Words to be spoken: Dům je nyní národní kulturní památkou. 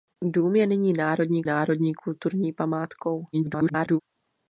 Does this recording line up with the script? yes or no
no